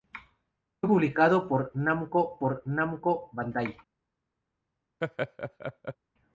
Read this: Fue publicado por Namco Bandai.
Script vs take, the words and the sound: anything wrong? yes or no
yes